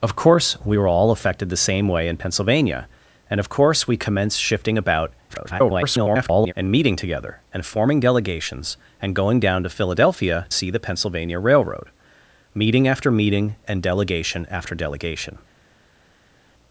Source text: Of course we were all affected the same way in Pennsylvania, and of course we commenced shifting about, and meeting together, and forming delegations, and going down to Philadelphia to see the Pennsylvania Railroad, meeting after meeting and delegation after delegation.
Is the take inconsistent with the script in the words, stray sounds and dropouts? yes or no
yes